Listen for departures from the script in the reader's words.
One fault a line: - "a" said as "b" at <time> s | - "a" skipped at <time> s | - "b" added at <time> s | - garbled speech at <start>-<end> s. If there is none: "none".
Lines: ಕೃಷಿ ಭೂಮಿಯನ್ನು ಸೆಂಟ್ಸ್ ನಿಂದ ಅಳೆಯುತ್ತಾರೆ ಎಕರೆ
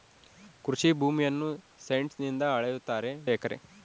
none